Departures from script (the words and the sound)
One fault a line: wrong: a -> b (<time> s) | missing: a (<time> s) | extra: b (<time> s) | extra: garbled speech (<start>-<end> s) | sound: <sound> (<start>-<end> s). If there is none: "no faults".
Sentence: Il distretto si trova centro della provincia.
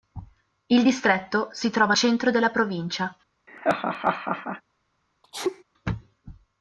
sound: laugh (3.5-4.6 s)
sound: sneeze (5.2-5.6 s)